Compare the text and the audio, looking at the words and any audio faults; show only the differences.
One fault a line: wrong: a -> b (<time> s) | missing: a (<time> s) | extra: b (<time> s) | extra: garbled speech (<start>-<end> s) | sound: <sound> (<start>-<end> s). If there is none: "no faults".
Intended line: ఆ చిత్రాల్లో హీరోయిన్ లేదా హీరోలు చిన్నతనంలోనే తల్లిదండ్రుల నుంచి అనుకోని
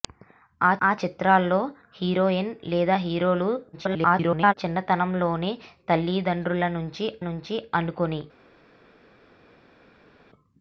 extra: ఆ (0.8 s)
extra: garbled speech (3.7-4.5 s)
extra: నుంచి (7.3 s)